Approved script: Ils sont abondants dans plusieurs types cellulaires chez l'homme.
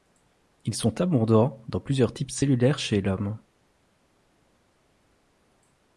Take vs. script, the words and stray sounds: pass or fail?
pass